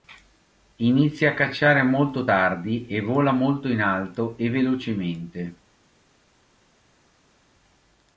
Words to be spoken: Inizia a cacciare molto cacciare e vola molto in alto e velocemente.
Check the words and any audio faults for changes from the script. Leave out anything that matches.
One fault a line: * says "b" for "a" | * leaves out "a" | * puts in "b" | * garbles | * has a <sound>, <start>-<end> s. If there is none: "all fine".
* says "tardi" for "cacciare"